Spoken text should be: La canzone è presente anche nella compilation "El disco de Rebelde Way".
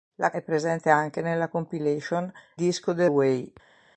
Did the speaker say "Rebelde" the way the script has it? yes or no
no